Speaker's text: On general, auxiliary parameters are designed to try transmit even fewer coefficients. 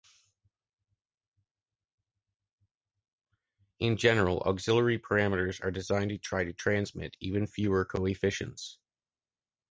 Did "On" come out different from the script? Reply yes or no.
yes